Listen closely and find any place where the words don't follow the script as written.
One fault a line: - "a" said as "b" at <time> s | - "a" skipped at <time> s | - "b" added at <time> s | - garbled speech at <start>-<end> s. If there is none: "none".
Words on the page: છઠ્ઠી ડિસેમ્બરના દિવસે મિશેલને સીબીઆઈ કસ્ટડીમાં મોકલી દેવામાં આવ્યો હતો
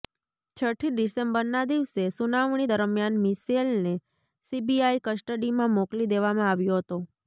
- "સુનાવણી દરમિયાન" added at 2.1 s